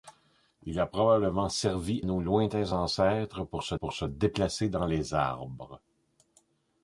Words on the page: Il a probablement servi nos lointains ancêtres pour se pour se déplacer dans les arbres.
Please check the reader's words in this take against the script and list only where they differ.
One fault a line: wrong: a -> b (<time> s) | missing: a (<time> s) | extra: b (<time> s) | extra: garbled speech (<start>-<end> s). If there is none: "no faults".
no faults